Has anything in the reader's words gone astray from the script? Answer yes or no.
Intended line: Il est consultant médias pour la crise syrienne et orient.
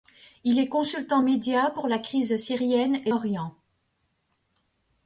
no